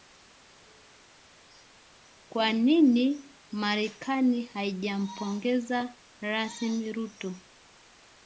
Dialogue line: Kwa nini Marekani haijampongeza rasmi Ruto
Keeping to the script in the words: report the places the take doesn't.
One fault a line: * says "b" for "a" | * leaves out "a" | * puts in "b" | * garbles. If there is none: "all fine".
all fine